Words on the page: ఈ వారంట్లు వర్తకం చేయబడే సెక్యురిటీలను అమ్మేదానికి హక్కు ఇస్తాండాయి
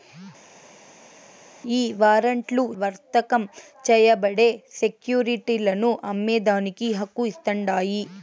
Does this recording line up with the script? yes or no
yes